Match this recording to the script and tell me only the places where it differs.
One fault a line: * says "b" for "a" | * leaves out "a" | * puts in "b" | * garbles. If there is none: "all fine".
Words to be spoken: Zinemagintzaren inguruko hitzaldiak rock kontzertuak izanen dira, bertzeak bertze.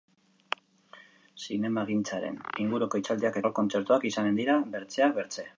all fine